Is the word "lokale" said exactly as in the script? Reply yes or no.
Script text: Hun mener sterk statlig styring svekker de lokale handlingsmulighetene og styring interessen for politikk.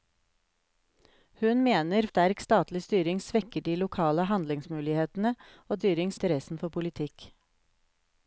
yes